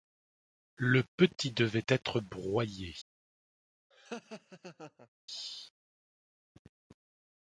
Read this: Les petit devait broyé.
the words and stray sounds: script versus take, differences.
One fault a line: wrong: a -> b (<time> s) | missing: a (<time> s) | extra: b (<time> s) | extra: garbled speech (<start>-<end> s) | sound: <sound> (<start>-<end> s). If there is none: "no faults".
wrong: Les -> Le (0.8 s)
extra: être (1.9 s)
sound: laugh (3.9-5.1 s)